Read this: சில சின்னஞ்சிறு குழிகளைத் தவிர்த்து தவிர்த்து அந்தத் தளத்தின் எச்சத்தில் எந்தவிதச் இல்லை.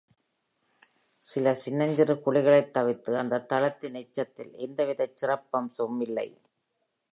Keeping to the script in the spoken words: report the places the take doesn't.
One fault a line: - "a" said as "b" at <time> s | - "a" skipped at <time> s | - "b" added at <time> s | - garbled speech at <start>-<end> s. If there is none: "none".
- "தவிர்த்து" skipped at 3.2 s
- "சிறப்பம்சமும்" added at 5.2 s